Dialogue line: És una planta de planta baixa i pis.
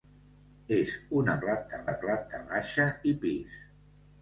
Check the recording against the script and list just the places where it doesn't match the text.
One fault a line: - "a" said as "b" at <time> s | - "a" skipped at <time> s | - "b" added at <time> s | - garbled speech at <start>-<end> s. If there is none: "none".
none